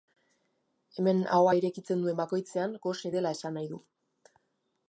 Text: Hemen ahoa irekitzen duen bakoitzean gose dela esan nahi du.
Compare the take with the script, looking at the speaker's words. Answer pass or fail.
pass